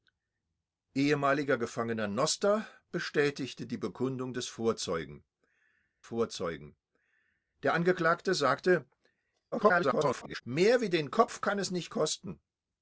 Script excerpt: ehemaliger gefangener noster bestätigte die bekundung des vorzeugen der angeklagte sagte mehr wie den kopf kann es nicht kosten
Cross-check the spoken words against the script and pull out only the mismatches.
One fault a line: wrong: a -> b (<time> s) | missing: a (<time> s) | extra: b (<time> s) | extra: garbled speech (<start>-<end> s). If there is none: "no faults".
extra: vorzeugen (6.0 s)
extra: garbled speech (9.5-10.4 s)